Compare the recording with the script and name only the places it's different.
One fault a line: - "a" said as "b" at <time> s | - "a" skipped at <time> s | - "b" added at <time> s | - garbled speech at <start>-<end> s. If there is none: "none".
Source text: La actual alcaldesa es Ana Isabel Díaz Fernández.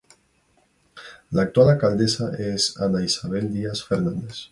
none